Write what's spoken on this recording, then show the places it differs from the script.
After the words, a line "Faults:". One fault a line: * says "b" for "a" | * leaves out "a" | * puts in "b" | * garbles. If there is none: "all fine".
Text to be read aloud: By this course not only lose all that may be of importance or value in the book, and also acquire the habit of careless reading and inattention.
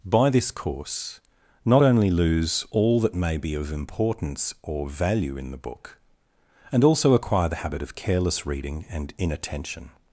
By this course not only lose all that may be of importance or value in the book, and also acquire the habit of careless reading and inattention.
Faults:
all fine